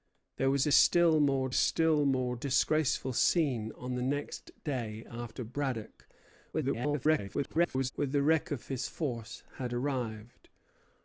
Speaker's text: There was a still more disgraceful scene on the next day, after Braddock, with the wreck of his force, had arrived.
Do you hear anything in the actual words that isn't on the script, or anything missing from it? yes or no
yes